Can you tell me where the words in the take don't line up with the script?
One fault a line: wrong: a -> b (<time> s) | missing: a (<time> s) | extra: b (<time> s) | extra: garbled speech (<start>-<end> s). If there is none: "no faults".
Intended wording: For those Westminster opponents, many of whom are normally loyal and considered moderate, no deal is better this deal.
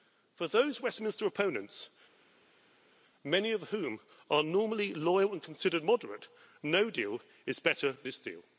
no faults